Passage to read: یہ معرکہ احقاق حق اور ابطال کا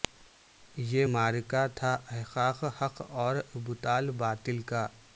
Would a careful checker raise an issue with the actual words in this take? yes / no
yes